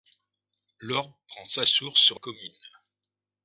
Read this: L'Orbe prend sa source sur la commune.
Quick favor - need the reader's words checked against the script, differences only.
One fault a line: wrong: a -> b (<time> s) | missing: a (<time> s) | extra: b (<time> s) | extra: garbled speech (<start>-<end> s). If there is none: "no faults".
missing: la (2.2 s)